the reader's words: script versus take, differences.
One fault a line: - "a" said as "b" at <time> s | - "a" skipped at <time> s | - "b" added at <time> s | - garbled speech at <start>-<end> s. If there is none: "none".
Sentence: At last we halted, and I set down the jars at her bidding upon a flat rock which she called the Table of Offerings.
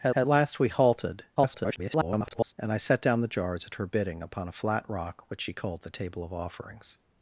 - "at" added at 0.1 s
- garbled speech at 1.4-2.5 s